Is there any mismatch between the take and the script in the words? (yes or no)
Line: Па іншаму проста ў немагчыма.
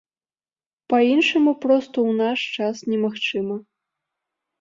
yes